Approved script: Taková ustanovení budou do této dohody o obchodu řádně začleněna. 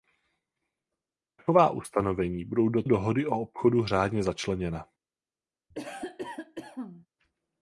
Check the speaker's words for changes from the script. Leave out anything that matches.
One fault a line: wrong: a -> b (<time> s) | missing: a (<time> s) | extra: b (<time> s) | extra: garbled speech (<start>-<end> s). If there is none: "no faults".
missing: této (2.8 s)